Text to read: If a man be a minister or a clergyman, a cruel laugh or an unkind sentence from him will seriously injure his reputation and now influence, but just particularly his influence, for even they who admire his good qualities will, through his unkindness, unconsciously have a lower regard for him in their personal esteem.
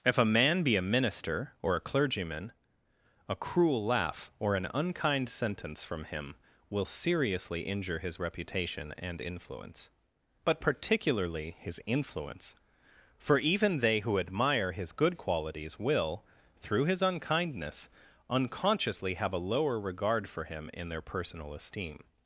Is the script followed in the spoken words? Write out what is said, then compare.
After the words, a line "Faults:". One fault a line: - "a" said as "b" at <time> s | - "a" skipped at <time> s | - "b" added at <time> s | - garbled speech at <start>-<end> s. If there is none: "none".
If a man be a minister or a clergyman, a cruel laugh or an unkind sentence from him will seriously injure his reputation and influence, but particularly his influence, for even they who admire his good qualities will, through his unkindness, unconsciously have a lower regard for him in their personal esteem.
Faults:
- "now" skipped at 9.2 s
- "just" skipped at 10.6 s